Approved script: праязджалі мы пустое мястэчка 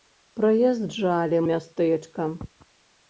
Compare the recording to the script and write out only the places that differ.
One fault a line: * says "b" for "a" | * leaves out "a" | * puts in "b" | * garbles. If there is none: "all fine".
* leaves out "мы пустое"